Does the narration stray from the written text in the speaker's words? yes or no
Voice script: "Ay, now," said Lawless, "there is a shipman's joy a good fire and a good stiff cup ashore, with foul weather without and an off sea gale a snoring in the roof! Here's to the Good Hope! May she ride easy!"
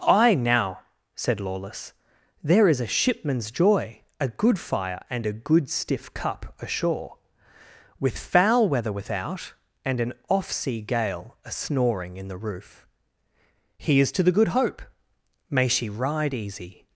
no